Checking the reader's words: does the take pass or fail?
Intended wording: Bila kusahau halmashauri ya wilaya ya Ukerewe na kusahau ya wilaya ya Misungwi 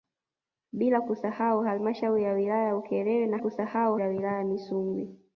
pass